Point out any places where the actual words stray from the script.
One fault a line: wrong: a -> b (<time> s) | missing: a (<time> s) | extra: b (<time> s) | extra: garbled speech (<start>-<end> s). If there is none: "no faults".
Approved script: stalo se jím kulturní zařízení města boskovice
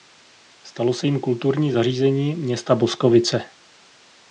no faults